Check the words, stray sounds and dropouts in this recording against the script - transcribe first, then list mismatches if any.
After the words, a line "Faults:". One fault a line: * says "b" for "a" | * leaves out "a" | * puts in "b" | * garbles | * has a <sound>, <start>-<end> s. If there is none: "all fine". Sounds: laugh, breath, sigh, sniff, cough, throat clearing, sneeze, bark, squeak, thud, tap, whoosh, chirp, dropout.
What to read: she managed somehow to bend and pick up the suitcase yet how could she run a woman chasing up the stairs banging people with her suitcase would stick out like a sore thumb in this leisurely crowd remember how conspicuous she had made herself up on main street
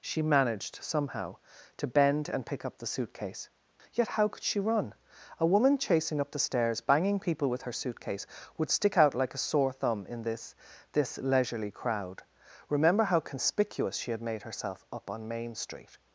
she managed somehow to bend and pick up the suitcase yet how could she run a woman chasing up the stairs banging people with her suitcase would stick out like a sore thumb in this this leisurely crowd remember how conspicuous she had made herself up on main street
Faults:
* puts in "this"